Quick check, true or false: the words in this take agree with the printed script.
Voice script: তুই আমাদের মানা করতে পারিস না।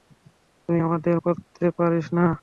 false